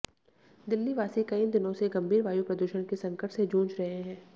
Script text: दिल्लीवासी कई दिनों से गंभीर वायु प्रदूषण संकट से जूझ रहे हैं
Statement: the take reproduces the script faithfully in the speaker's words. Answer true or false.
false